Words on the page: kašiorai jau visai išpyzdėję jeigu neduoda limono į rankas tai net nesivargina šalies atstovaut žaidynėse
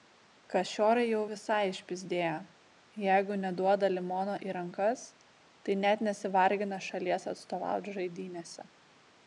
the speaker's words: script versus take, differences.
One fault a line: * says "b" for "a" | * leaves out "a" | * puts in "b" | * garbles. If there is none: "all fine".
all fine